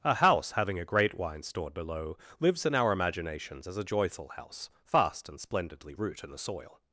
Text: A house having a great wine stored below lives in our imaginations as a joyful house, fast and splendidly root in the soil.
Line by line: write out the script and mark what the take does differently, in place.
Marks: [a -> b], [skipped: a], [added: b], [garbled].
A house having a great wine stored below lives in our imaginations as a joyful house, fast and splendidly root in the soil.